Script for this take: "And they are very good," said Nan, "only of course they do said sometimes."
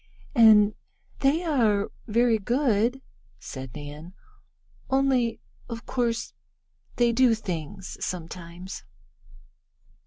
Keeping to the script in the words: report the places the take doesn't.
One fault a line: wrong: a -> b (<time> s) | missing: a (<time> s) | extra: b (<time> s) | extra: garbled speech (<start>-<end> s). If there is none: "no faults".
wrong: said -> things (7.3 s)